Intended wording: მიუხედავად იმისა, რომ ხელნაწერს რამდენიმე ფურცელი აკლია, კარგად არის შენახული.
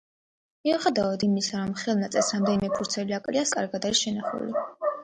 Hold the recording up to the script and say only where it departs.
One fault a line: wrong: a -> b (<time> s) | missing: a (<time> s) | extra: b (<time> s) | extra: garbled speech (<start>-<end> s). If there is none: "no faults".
no faults